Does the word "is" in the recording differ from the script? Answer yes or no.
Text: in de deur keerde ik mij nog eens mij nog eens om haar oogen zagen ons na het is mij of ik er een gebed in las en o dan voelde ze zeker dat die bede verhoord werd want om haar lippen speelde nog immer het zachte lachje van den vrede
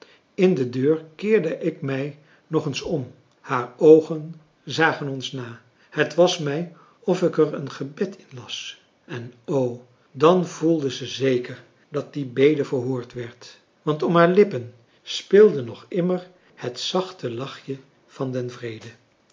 yes